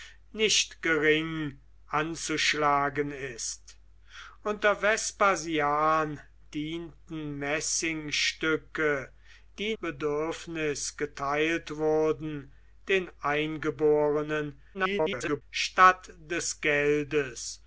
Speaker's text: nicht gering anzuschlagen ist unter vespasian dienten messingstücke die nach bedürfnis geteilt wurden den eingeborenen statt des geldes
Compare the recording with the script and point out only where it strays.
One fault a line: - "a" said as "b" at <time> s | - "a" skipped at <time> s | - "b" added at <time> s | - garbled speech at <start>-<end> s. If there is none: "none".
- "nach" skipped at 9.8 s
- garbled speech at 14.7-15.4 s